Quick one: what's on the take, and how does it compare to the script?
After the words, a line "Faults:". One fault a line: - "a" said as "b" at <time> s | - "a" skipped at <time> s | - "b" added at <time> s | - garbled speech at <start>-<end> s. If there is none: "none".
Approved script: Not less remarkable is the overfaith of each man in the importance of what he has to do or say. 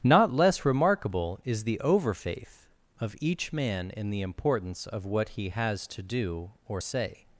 Not less remarkable is the overfaith of each man in the importance of what he has to do or say.
Faults:
none